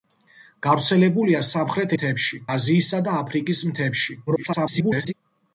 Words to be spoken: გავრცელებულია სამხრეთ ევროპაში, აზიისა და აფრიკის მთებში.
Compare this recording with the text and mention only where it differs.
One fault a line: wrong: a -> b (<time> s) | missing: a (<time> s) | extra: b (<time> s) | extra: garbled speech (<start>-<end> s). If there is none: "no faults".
wrong: ევროპაში -> მთებში (1.9 s)
extra: garbled speech (4.3-5.1 s)